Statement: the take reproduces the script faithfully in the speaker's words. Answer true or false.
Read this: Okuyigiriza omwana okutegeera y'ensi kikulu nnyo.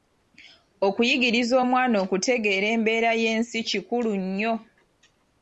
false